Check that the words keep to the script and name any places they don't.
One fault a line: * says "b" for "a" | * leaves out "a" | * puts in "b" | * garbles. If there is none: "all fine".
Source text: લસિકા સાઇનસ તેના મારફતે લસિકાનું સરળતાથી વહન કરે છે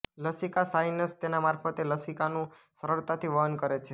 all fine